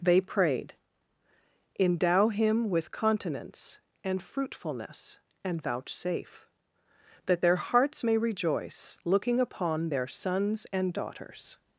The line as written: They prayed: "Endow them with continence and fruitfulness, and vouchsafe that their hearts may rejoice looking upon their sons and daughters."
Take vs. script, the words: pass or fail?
fail